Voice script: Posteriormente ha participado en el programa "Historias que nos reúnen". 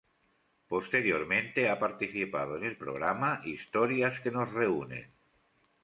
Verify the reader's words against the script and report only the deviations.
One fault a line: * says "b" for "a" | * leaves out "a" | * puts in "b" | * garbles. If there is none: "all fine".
all fine